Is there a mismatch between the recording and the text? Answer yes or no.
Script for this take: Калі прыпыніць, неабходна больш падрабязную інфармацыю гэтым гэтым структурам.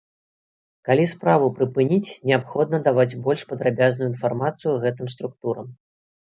yes